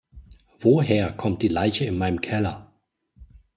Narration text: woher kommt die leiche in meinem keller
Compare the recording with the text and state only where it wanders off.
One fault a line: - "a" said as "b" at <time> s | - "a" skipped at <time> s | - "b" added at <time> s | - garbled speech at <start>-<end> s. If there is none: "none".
none